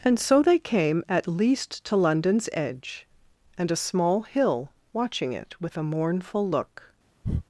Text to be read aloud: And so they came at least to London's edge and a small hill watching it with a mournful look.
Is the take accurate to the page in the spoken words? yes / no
yes